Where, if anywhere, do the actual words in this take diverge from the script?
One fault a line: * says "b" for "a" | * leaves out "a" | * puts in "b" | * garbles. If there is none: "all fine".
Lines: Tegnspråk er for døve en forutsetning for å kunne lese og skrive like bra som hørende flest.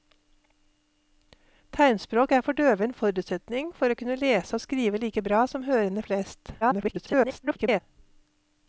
* garbles